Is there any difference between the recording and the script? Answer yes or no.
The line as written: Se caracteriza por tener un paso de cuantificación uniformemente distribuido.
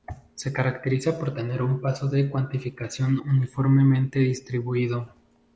no